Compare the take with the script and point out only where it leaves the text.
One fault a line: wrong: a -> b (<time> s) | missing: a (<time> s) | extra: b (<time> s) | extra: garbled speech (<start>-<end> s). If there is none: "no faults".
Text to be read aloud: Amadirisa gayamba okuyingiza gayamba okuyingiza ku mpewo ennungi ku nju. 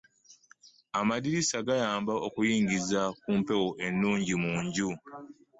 missing: gayamba okuyingiza (3.0 s)
wrong: ku -> mu (4.4 s)